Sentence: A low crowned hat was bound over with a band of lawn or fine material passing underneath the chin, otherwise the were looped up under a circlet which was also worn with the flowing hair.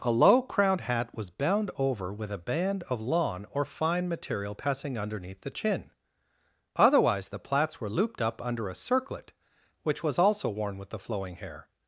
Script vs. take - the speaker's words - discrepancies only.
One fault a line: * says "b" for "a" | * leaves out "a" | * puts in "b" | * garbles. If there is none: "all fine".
* puts in "plaits"